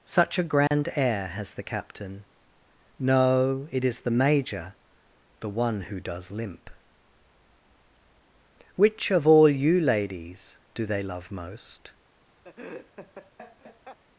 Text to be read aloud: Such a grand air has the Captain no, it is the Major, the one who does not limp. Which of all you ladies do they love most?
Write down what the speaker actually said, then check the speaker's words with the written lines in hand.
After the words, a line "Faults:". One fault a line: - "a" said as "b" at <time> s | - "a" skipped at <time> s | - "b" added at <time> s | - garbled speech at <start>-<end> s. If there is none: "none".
Such a grand air has the Captain no, it is the Major, the one who does limp. Which of all you ladies do they love most?
Faults:
- "not" skipped at 6.3 s